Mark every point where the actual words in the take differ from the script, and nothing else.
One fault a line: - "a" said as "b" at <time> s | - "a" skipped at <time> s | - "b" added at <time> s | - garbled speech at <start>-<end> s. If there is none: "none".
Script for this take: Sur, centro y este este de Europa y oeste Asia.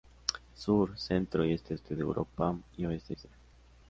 none